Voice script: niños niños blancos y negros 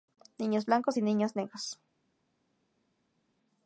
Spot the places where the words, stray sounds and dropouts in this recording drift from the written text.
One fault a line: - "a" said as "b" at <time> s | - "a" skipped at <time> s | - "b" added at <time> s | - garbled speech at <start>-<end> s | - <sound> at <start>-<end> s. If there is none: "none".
- "niños" skipped at 0.7 s
- "niños" added at 1.0 s